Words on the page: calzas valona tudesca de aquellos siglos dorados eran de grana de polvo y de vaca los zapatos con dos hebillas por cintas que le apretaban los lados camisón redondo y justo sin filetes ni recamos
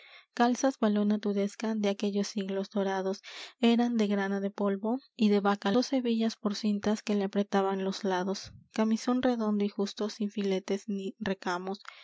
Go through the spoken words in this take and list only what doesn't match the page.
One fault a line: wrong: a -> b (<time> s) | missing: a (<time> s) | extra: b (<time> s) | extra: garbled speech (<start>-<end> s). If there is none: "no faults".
missing: los zapatos con (5.7 s)